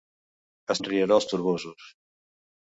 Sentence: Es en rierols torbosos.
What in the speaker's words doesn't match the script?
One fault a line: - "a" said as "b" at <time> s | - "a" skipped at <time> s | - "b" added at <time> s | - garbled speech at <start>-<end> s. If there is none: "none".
none